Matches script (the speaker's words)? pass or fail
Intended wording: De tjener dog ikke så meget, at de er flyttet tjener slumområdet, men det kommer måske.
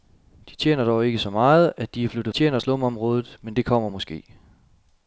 pass